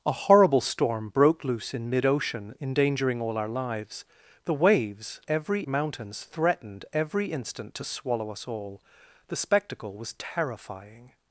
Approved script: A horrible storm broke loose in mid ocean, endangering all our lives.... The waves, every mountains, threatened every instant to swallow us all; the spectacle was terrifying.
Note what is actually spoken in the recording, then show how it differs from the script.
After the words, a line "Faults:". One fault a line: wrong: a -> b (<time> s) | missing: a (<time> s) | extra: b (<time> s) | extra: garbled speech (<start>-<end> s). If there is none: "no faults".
A horrible storm broke loose in mid ocean, endangering all our lives.... The waves, every mountains, threatened every instant to swallow us all; the spectacle was terrifying.
Faults:
no faults